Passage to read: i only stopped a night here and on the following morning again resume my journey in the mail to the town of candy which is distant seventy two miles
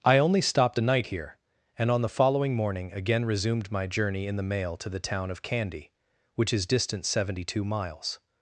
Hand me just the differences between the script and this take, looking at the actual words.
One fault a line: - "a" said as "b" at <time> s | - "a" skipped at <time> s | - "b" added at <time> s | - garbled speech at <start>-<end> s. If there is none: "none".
- "resume" said as "resumed" at 3.3 s